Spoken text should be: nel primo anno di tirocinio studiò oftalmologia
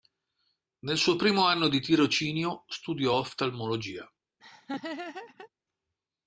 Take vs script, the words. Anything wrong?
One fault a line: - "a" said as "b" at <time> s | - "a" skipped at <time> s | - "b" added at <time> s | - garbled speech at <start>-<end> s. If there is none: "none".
- "suo" added at 1.0 s